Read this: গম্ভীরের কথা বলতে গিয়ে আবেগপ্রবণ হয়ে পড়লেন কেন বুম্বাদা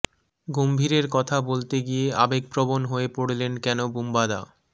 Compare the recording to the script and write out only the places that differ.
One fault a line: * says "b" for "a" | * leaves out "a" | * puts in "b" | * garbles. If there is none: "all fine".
all fine